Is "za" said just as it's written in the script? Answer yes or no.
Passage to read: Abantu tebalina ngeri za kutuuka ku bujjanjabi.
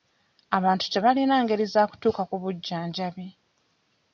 yes